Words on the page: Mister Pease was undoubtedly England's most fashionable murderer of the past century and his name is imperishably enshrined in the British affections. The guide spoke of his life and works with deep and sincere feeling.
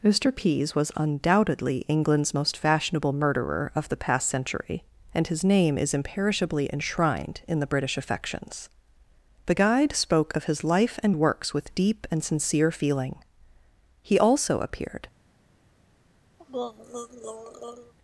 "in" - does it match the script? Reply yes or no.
yes